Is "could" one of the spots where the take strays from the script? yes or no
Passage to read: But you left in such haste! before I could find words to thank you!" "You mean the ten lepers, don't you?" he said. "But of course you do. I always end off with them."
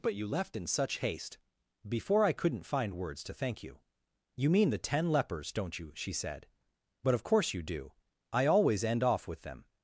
yes